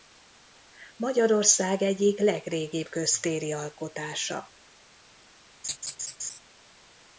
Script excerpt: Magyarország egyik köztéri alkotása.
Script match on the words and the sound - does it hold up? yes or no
no